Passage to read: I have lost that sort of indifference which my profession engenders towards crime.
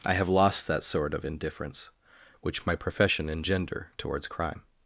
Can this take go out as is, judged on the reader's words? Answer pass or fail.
fail